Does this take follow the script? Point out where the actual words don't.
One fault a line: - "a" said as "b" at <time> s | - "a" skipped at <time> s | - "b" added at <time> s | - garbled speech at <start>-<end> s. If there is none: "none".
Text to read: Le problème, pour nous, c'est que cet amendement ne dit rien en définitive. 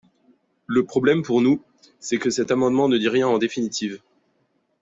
none